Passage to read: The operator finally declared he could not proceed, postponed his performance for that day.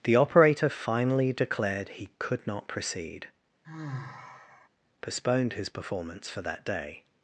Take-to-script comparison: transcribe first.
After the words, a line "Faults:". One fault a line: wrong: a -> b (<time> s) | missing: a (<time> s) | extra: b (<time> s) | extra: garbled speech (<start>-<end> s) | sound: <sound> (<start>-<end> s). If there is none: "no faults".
The operator finally declared he could not proceed, postponed his performance for that day.
Faults:
sound: sigh (3.6-4.7 s)